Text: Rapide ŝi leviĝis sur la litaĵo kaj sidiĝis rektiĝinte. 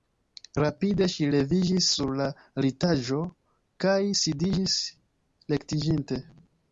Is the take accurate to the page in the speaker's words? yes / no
yes